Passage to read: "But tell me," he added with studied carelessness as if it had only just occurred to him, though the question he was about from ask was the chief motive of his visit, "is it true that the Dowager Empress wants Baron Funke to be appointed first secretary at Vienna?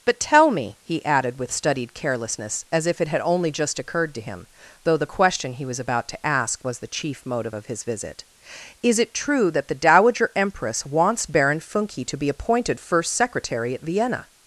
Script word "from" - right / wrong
wrong